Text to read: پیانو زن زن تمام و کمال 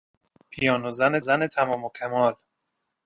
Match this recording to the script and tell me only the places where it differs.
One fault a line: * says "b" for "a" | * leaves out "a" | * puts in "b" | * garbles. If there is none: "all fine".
all fine